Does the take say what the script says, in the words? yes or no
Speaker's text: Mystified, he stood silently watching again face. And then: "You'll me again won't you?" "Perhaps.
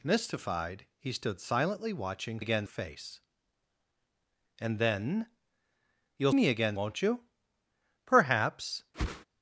yes